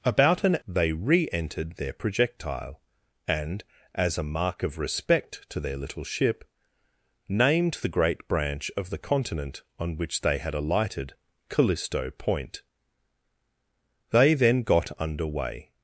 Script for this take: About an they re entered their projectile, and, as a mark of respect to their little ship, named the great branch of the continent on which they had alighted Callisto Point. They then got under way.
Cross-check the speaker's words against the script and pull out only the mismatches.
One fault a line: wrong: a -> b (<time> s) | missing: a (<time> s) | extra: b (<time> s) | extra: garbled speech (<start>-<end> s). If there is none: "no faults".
no faults